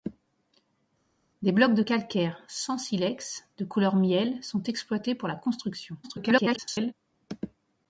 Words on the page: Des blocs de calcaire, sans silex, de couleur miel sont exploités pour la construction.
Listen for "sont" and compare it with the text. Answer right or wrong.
right